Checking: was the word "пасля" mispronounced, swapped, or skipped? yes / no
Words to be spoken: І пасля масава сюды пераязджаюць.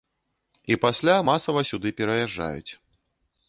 no